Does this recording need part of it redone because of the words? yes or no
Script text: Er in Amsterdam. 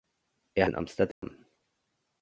no